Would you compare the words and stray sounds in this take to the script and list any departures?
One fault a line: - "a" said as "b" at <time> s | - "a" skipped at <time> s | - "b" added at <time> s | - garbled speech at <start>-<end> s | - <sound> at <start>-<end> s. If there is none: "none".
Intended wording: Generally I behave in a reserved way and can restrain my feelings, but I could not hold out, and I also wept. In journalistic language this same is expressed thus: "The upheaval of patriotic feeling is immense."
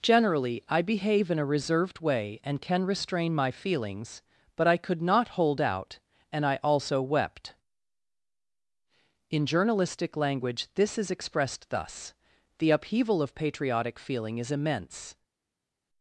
- "same" skipped at 11.0 s